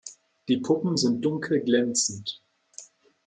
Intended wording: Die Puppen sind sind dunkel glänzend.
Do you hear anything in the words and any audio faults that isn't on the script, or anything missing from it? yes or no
yes